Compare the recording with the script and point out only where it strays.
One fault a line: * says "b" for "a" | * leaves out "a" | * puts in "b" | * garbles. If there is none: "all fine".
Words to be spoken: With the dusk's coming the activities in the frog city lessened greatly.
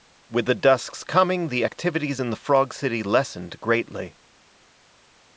all fine